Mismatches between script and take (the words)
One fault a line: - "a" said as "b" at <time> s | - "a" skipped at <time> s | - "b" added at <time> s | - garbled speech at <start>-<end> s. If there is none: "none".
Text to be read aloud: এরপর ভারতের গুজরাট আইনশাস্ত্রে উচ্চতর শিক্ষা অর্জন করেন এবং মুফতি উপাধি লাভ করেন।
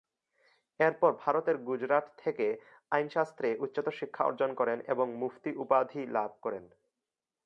- "থেকে" added at 2.2 s